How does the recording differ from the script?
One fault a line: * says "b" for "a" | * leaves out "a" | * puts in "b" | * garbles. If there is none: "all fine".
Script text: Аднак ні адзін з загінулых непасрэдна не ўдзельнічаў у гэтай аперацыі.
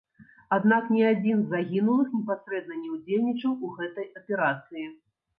all fine